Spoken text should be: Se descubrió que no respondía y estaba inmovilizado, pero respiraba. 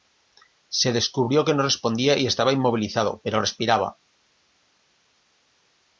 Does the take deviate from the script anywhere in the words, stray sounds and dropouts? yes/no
no